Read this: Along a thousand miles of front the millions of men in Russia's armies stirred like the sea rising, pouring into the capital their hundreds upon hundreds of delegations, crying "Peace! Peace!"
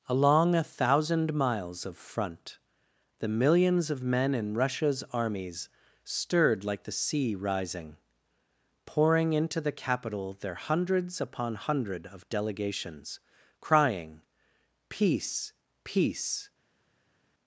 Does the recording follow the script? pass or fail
fail